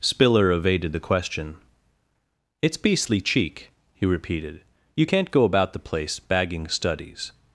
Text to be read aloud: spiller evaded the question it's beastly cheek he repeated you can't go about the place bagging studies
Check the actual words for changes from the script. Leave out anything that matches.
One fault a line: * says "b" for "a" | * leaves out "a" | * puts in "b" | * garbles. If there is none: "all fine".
all fine